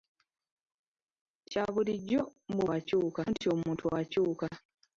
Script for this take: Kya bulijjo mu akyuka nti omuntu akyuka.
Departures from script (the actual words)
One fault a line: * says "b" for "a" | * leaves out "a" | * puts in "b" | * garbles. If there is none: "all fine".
all fine